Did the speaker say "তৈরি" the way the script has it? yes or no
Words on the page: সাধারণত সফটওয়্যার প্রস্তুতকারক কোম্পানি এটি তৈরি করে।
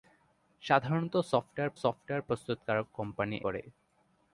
no